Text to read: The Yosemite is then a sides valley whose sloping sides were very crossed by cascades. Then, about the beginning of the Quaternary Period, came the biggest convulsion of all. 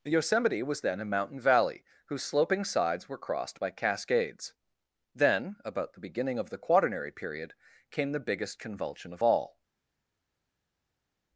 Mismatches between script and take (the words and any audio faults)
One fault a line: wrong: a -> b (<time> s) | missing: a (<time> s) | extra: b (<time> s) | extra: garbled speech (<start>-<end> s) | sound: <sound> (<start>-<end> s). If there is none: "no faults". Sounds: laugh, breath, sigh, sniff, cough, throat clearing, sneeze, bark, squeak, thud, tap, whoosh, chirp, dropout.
wrong: is -> was (0.6 s)
wrong: sides -> mountain (1.0 s)
missing: very (3.2 s)